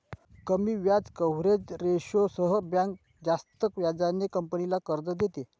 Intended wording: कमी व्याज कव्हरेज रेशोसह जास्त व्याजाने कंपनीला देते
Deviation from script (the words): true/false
true